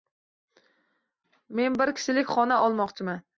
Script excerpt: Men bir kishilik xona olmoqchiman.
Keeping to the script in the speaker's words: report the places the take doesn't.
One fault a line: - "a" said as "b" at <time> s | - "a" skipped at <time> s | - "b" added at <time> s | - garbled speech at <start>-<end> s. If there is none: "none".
none